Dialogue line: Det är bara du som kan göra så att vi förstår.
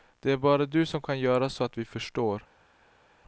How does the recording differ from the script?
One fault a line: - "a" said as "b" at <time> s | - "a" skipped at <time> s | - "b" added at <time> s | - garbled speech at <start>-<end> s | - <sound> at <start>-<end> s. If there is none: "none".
none